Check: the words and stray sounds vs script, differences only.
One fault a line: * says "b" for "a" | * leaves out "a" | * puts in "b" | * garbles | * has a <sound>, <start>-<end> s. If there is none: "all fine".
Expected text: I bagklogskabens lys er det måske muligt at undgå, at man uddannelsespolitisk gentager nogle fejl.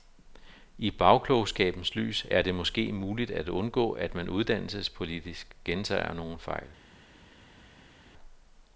all fine